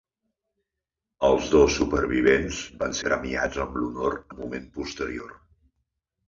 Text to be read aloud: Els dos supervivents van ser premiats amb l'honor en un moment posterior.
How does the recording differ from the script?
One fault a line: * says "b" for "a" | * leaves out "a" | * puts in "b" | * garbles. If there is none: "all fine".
* leaves out "ser"
* leaves out "en"